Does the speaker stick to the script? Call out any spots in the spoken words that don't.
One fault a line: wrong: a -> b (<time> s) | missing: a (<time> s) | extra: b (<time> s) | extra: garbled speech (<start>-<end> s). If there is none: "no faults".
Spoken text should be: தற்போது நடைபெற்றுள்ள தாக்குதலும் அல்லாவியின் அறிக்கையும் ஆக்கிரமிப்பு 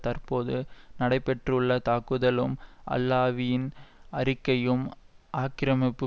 no faults